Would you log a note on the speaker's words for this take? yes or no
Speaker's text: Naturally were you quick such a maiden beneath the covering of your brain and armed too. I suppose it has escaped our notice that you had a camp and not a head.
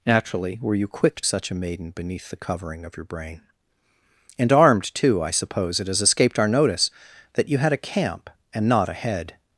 no